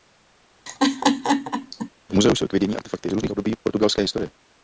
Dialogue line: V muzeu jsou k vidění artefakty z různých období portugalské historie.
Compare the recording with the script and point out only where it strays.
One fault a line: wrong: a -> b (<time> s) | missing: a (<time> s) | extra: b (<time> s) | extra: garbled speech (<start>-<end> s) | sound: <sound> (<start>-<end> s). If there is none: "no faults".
sound: laugh (0.7-1.9 s)